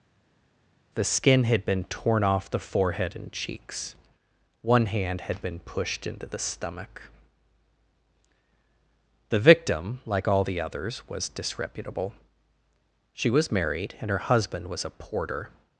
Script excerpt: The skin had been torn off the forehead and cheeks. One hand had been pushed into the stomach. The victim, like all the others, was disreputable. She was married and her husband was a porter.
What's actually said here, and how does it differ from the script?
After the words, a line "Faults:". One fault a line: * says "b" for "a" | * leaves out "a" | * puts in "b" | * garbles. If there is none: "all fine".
The skin had been torn off the forehead and cheeks. One hand had been pushed into the stomach. The victim, like all the others, was disreputable. She was married and her husband was a porter.
Faults:
all fine